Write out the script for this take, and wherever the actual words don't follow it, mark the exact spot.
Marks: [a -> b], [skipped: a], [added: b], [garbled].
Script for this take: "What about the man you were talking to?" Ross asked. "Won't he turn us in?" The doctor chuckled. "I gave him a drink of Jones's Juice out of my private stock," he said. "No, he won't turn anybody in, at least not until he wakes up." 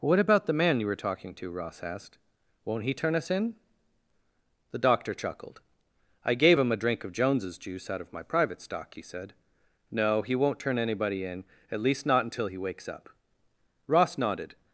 "What about the man you were talking to?" Ross asked. "Won't he turn us in?" The doctor chuckled. "I gave him a drink of Jones's Juice out of my private stock," he said. "No, he won't turn anybody in, at least not until he wakes up." [added: Ross nodded]